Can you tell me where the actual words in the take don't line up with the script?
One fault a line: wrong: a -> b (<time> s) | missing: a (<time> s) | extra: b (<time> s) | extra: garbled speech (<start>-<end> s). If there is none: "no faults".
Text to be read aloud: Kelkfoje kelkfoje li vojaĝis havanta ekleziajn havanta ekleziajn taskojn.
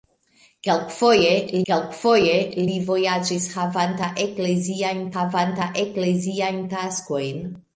no faults